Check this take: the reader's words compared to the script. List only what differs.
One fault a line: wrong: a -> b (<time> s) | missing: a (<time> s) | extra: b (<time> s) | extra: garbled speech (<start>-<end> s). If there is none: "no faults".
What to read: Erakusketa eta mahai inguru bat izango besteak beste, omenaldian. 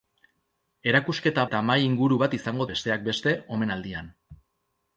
no faults